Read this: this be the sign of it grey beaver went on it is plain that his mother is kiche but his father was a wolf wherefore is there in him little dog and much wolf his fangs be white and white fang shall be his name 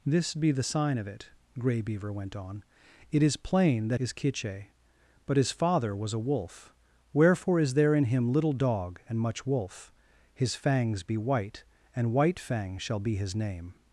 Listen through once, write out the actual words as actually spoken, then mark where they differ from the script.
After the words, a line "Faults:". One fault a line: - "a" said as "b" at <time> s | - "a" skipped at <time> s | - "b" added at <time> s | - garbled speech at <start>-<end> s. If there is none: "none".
this be the sign of it grey beaver went on it is plain that is kiche but his father was a wolf wherefore is there in him little dog and much wolf his fangs be white and white fang shall be his name
Faults:
- "his mother" skipped at 4.0 s